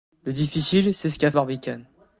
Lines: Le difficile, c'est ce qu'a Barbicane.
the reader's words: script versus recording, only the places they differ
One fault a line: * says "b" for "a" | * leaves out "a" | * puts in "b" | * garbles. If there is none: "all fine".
all fine